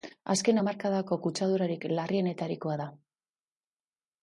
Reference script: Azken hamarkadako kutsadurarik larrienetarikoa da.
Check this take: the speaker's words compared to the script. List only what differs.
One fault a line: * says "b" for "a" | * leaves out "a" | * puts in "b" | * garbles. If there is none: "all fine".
all fine